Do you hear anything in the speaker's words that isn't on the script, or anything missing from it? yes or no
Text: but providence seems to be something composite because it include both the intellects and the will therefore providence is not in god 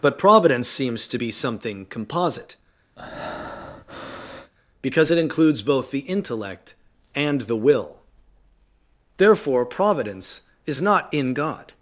yes